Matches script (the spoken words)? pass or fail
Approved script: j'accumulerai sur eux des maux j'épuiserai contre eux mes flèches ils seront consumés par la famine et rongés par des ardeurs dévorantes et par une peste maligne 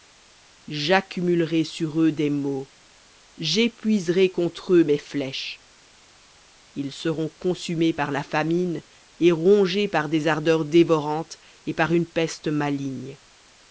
pass